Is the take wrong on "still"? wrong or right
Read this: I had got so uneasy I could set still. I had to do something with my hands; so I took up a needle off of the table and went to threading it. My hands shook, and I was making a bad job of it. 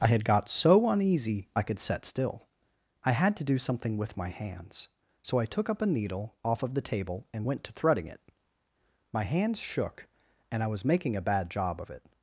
right